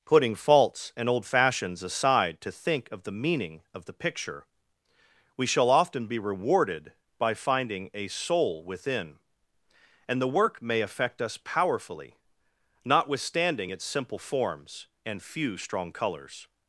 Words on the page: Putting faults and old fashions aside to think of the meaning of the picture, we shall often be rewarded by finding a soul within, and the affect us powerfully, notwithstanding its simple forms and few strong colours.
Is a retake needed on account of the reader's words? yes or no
yes